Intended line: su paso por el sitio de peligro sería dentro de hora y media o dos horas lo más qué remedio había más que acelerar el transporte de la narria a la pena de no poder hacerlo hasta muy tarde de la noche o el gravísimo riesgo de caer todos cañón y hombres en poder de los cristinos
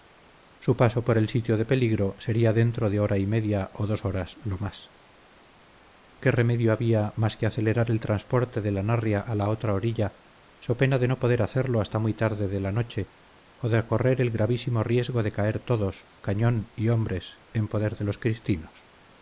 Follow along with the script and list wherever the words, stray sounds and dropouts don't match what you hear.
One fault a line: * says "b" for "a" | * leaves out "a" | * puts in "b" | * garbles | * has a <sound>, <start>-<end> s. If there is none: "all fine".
* puts in "otra orilla so"
* puts in "de correr"